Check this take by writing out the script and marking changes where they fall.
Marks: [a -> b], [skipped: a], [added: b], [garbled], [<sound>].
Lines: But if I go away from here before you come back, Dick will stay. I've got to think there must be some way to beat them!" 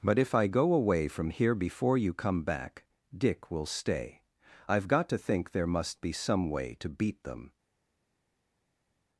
But if I go away from here before you come back, Dick will stay. I've got to think there must be some way to beat them!"